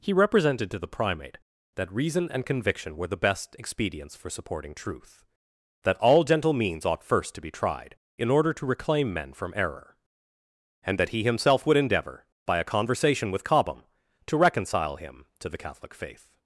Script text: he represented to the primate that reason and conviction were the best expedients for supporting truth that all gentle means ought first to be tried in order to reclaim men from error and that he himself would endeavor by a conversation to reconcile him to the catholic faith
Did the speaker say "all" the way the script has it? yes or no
yes